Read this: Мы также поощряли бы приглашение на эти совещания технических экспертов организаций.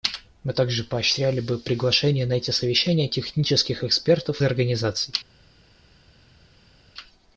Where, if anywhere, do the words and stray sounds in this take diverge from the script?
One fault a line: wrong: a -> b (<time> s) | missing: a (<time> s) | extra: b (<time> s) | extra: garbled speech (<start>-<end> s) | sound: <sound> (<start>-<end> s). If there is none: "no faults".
no faults